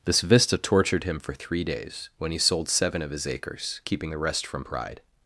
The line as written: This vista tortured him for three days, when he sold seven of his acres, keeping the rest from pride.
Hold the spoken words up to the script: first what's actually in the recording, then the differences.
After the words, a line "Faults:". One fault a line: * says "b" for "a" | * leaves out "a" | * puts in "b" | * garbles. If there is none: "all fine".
This vista tortured him for three days, when he sold seven of his acres, keeping the rest from pride.
Faults:
all fine